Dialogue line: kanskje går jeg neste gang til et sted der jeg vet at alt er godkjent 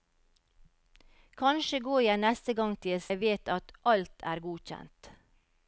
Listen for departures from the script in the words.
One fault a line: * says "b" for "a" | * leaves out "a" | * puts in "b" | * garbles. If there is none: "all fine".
* leaves out "sted der"